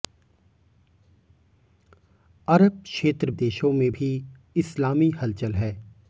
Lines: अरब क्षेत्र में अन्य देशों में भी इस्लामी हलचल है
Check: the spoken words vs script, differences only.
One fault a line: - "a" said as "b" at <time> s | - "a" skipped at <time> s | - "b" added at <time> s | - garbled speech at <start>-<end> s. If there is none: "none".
- "में अन्य" skipped at 3.3 s